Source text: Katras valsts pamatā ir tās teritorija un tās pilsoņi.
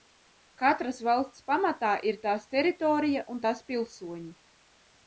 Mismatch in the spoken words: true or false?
false